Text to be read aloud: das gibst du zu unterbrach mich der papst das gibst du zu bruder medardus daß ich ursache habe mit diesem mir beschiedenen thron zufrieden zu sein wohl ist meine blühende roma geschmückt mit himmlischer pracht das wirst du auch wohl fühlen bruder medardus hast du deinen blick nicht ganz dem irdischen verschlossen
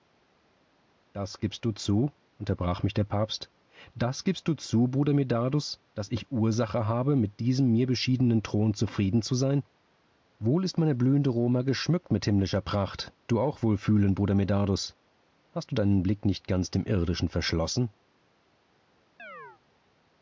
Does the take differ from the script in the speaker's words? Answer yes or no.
yes